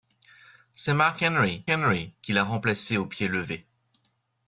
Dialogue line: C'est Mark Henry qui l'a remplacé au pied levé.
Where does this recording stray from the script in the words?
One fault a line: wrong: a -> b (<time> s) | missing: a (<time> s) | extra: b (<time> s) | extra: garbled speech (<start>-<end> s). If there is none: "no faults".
extra: Henry (1.7 s)